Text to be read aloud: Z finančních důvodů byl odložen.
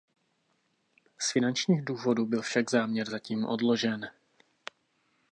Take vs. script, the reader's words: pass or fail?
fail